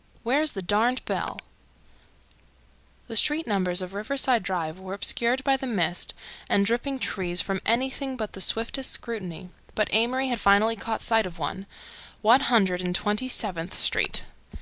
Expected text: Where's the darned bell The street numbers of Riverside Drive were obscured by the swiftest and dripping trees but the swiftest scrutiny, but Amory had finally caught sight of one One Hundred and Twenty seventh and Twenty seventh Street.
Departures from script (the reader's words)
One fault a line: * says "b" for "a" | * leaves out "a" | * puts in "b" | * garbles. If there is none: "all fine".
* says "mist" for "swiftest"
* puts in "from anything"
* leaves out "and Twenty seventh"